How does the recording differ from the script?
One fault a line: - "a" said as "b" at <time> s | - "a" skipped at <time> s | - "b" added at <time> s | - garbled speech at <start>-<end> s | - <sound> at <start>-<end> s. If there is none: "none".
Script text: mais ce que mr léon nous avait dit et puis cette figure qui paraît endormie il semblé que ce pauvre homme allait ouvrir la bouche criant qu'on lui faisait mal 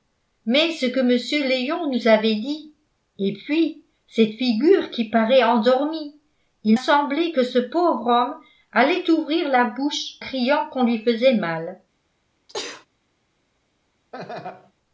- sneeze at 12.5-12.9 s
- laugh at 14.1-14.7 s